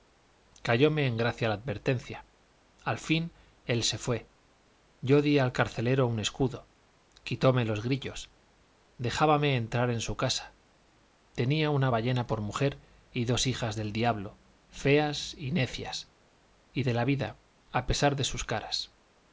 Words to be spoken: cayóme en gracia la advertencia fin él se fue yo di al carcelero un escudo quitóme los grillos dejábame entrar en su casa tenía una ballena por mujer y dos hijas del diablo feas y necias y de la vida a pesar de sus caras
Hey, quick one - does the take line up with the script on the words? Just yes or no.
no